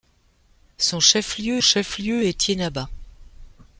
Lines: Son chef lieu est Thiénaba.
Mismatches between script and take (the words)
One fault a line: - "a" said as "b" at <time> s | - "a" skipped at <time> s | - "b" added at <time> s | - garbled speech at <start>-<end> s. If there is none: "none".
- "chef lieu" added at 1.6 s